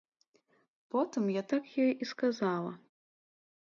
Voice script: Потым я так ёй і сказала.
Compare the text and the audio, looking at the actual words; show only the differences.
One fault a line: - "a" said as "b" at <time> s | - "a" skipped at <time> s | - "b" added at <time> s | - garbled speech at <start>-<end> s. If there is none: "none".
none